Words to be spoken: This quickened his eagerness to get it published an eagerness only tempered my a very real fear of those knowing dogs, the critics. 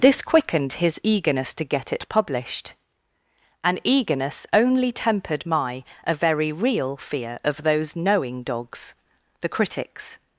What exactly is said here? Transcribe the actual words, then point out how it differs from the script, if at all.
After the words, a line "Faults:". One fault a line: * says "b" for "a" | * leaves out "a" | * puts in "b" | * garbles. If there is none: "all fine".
This quickened his eagerness to get it published an eagerness only tempered my a very real fear of those knowing dogs, the critics.
Faults:
all fine